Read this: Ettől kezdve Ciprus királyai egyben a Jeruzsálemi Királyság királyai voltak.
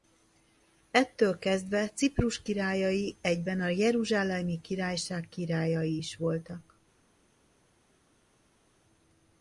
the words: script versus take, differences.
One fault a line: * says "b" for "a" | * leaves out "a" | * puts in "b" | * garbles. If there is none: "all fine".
* puts in "is"